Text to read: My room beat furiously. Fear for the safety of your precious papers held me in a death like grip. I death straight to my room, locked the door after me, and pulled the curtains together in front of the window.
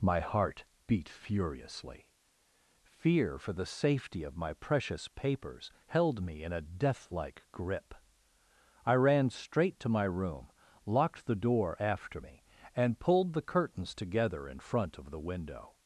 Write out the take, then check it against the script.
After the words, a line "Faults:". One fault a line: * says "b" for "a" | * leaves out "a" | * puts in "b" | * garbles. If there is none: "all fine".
My heart beat furiously. Fear for the safety of my precious papers held me in a death like grip. I ran straight to my room, locked the door after me, and pulled the curtains together in front of the window.
Faults:
* says "heart" for "room"
* says "my" for "your"
* says "ran" for "death"